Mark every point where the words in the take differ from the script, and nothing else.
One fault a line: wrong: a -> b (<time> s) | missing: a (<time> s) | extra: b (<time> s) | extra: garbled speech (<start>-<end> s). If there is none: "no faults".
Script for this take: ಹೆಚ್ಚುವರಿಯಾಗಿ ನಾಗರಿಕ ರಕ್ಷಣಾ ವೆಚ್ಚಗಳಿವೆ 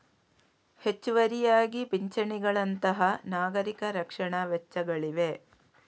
extra: ಪಿಂಚಣಿಗಳಂತಹ (1.8 s)